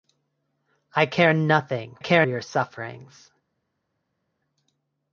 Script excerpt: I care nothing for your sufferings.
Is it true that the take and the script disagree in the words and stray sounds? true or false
true